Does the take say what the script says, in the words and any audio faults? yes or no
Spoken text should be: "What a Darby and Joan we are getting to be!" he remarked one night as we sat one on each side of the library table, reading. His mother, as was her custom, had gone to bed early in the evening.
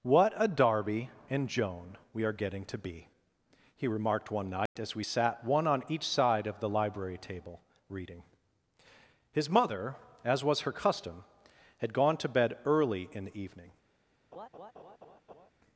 no